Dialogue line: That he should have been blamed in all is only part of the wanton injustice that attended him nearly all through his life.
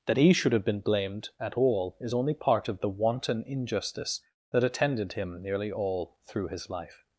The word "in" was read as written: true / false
false